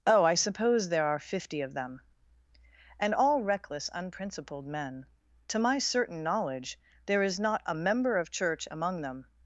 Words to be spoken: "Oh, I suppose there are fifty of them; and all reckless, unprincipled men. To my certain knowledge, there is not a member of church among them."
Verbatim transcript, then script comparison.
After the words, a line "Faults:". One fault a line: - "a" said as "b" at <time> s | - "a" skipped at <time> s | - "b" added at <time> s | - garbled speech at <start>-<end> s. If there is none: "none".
"Oh, I suppose there are fifty of them; and all reckless, unprincipled men. To my certain knowledge, there is not a member of church among them."
Faults:
none